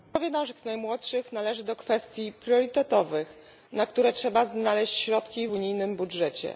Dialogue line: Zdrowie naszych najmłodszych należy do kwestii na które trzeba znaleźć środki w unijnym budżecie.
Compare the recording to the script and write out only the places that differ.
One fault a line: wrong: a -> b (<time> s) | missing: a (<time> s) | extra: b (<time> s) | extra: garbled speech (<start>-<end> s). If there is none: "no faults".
extra: priorytetowych (2.3 s)